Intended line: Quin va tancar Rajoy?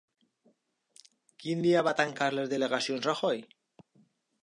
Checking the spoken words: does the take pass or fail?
fail